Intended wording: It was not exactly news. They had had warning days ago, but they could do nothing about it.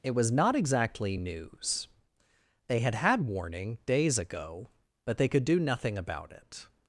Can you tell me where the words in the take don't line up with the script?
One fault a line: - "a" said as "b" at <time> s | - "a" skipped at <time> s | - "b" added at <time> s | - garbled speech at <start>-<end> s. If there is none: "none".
none